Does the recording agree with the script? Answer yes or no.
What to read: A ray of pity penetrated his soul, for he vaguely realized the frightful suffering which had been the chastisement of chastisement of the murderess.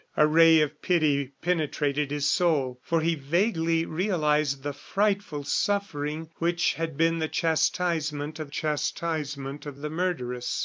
yes